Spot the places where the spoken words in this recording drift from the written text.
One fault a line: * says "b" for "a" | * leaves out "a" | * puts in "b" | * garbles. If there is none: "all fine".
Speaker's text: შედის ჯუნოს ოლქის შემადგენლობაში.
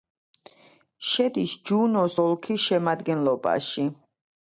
all fine